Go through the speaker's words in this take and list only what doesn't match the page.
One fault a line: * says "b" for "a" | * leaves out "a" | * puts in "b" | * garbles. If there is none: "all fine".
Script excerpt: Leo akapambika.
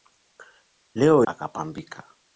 all fine